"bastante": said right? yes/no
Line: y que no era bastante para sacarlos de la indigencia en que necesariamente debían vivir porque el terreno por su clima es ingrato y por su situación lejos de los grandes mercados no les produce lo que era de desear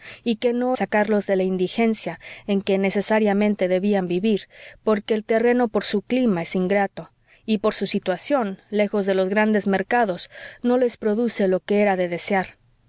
no